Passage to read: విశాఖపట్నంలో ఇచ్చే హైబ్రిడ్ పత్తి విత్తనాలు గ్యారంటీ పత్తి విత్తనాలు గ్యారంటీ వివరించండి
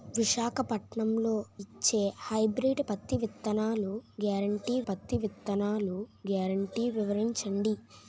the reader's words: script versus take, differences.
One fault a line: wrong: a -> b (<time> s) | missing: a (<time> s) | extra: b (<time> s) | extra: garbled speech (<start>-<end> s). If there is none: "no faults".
no faults